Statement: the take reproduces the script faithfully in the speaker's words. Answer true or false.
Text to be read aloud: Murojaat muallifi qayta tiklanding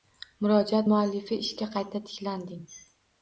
false